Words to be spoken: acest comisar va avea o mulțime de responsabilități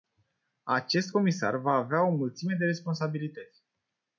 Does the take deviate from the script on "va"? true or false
false